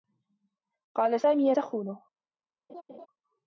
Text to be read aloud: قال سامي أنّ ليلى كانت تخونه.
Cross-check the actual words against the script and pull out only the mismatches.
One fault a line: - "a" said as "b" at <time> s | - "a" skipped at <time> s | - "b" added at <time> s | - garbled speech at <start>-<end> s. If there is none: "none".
- "أنّ ليلى كانت" skipped at 1.5 s